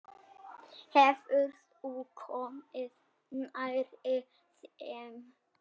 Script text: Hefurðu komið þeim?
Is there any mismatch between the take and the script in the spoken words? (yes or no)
yes